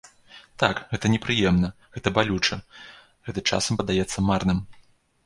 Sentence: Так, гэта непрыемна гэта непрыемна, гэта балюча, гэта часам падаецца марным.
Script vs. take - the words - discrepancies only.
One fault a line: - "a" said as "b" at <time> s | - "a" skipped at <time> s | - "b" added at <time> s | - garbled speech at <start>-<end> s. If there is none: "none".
- "непрыемна гэта" skipped at 2.1 s